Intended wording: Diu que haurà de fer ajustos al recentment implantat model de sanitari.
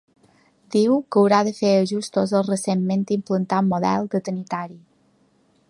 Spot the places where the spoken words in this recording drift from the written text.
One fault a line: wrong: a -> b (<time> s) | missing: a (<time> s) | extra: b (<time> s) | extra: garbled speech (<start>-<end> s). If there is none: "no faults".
no faults